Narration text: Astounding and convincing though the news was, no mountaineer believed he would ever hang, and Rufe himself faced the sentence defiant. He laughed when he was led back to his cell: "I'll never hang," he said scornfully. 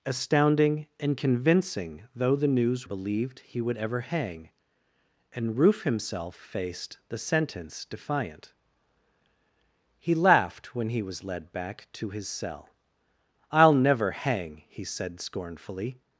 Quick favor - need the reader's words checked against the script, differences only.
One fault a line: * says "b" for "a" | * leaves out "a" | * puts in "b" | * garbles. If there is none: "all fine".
* leaves out "was no mountaineer"